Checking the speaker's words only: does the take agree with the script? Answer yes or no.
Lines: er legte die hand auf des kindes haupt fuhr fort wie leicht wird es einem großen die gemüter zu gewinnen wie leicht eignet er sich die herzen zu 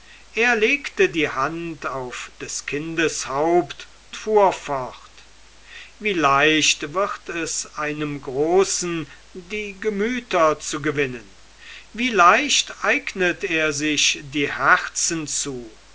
yes